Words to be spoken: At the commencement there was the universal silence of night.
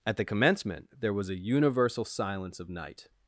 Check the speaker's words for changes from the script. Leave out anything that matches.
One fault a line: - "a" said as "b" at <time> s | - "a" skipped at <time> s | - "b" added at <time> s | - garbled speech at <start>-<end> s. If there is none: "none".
- "the" said as "a" at 1.3 s